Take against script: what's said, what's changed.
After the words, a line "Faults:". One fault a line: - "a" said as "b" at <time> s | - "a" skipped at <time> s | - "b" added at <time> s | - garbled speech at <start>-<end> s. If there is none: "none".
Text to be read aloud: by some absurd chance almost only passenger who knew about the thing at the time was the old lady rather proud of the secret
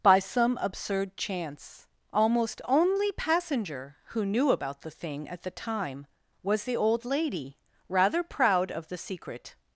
by some absurd chance almost only passenger who knew about the thing at the time was the old lady rather proud of the secret
Faults:
none